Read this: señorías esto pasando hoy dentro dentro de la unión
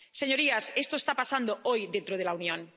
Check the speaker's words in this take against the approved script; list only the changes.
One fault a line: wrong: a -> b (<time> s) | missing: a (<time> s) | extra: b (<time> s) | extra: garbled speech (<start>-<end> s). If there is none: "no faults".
extra: está (1.0 s)
missing: dentro (2.2 s)